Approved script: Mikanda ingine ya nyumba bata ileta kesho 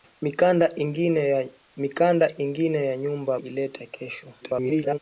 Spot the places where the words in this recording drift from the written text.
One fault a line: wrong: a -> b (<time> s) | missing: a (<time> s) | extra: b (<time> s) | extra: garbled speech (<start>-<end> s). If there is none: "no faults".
missing: bata (3.4 s)
extra: garbled speech (4.4-5.0 s)